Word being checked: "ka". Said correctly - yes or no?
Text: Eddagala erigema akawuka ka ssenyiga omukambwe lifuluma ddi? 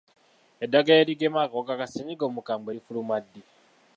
yes